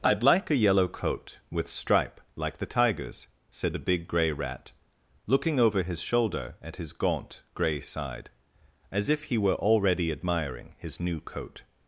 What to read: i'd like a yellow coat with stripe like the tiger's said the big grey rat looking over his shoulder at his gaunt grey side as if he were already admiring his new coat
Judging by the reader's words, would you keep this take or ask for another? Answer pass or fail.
pass